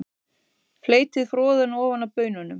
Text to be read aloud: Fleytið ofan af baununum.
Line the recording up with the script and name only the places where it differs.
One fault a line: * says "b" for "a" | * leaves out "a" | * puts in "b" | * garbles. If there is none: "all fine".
* puts in "froðuna"